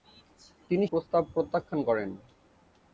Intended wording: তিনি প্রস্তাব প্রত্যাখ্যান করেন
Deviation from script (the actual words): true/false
false